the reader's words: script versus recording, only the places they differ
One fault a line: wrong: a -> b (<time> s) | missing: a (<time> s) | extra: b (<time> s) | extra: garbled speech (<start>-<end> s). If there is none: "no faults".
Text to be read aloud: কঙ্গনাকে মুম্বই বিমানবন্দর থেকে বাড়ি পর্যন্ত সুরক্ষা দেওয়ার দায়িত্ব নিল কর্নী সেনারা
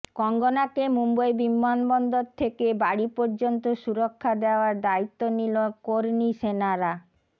no faults